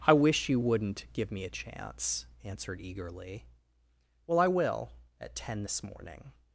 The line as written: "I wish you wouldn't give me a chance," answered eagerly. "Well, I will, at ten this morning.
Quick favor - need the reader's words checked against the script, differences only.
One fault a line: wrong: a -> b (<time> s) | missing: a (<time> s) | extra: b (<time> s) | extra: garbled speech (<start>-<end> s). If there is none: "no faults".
no faults